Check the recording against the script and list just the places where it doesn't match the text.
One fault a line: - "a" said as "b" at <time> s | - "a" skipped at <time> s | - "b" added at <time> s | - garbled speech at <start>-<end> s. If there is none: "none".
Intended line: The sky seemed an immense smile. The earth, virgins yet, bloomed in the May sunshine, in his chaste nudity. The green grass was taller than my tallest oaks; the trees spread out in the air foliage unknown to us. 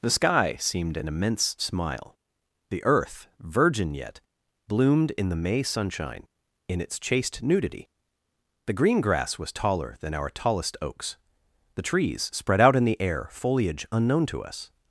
- "virgins" said as "virgin" at 3.4 s
- "his" said as "its" at 6.8 s
- "my" said as "our" at 10.2 s